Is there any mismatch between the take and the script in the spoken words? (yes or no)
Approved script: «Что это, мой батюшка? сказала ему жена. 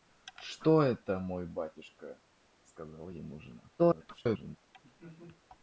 yes